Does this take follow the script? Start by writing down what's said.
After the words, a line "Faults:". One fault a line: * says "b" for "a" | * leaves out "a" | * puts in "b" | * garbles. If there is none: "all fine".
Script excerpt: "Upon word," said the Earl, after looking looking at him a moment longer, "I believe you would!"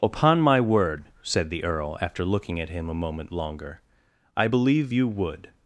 "Upon my word," said the Earl, after looking at him a moment longer, "I believe you would!"
Faults:
* puts in "my"
* leaves out "looking"